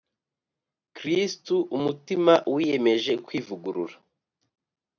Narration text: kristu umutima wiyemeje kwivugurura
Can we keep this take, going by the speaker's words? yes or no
yes